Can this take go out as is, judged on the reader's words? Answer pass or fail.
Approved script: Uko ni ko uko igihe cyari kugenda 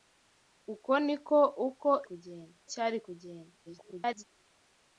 fail